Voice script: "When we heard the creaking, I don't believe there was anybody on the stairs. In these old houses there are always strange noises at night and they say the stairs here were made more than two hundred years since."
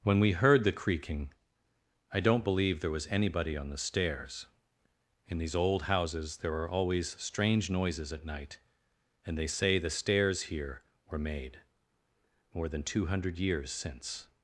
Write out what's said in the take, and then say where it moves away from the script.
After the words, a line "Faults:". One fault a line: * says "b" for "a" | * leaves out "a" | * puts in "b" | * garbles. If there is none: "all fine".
"When we heard the creaking, I don't believe there was anybody on the stairs. In these old houses there are always strange noises at night and they say the stairs here were made more than two hundred years since."
Faults:
all fine